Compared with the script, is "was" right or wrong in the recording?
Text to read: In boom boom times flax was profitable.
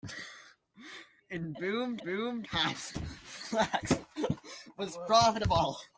right